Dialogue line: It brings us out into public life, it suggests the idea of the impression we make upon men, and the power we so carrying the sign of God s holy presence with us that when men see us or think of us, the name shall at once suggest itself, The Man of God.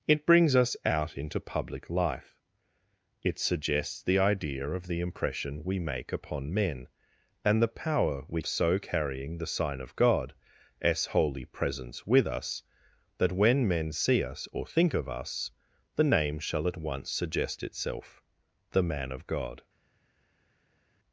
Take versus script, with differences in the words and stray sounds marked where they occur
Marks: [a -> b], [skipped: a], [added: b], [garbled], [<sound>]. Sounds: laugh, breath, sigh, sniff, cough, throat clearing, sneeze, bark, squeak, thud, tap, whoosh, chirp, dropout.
It brings us out into public life, it suggests the idea of the impression we make upon men, and the power we so carrying the sign of God s holy presence with us that when men see us or think of us, the name shall at once suggest itself, The Man of God.